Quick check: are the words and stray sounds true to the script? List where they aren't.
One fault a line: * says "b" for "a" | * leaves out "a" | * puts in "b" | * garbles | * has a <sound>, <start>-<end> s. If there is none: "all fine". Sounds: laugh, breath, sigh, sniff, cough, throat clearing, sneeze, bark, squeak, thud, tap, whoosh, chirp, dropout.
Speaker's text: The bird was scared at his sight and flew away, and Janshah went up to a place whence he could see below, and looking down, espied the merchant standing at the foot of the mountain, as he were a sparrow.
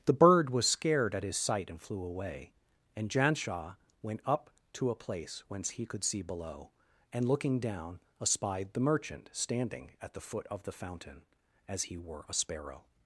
* says "fountain" for "mountain"